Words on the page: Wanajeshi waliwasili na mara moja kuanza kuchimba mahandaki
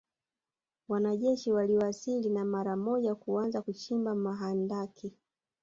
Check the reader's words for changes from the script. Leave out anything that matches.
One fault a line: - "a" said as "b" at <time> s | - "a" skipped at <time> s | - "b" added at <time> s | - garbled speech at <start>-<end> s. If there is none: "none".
none